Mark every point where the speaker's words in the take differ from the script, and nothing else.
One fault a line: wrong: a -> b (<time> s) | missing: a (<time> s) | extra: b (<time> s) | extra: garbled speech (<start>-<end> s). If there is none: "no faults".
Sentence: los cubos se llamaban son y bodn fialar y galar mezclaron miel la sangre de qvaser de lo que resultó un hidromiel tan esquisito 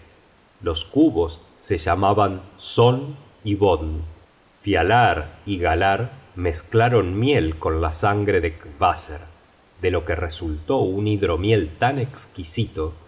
extra: con (7.6 s)